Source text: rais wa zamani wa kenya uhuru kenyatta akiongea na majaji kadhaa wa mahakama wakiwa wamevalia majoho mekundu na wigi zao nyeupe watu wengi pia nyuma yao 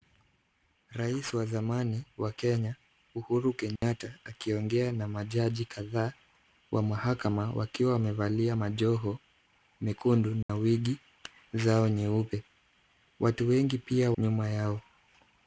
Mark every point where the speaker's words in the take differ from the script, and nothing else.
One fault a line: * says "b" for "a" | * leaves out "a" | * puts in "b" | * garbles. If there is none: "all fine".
all fine